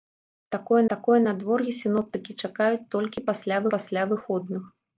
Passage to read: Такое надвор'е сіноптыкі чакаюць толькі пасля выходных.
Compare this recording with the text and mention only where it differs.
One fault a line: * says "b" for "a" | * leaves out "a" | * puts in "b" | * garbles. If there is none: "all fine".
* puts in "такое"
* puts in "пасля"